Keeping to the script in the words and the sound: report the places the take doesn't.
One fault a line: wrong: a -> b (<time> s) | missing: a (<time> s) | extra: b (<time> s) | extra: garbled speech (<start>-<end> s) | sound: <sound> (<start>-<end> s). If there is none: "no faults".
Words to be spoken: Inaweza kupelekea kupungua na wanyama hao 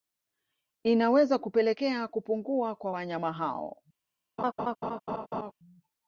wrong: na -> kwa (2.8 s)
sound: laugh (4.4-5.5 s)